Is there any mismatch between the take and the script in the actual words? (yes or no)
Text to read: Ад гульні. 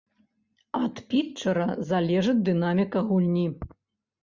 yes